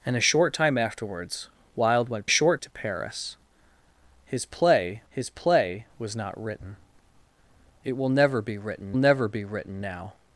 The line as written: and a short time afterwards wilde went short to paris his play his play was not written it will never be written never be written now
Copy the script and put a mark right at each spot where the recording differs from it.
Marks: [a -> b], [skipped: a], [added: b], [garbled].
and a short time afterwards wilde went short to paris his play his play was not written it will never be written never be written now